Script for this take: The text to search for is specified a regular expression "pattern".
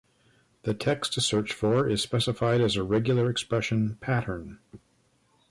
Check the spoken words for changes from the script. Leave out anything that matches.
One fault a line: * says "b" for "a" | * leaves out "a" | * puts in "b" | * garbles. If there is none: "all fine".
* puts in "as"